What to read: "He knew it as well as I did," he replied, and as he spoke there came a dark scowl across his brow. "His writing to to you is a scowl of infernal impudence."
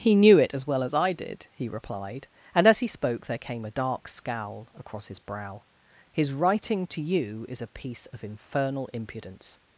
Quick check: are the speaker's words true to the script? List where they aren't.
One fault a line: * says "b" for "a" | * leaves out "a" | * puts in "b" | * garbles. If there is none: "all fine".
* leaves out "to"
* says "piece" for "scowl"